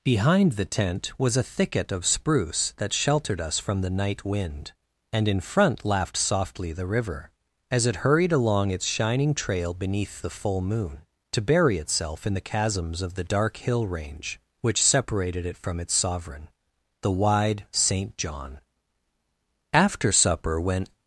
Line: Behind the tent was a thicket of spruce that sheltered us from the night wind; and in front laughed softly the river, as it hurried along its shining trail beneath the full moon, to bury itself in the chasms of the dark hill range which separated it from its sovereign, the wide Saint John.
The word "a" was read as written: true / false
true